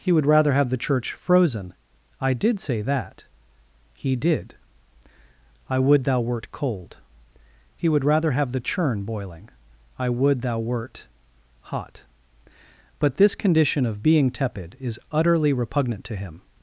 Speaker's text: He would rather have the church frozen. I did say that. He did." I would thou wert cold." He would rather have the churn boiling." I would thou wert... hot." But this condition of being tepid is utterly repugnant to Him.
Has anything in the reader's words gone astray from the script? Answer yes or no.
no